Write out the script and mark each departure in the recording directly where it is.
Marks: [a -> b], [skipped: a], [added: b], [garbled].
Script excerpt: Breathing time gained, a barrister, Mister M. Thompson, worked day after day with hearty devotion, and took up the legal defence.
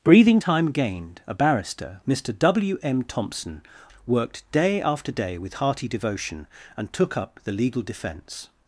Breathing time gained, a barrister, Mister [added: W] M. Thompson, worked day after day with hearty devotion, and took up the legal defence.